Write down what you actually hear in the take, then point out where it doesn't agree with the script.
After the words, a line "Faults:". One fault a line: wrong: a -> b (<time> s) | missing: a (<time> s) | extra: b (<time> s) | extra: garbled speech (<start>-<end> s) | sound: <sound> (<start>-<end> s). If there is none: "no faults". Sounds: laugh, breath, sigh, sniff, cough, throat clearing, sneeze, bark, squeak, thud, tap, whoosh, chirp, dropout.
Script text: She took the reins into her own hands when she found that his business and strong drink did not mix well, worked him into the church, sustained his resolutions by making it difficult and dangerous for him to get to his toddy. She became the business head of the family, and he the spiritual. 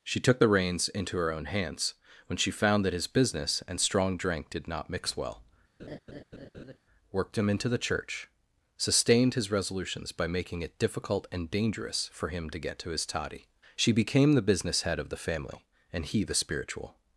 She took the reins into her own hands when she found that his business and strong drink did not mix well, worked him into the church, sustained his resolutions by making it difficult and dangerous for him to get to his toddy. She became the business head of the family, and he the spiritual.
Faults:
sound: laugh (5.8-6.8 s)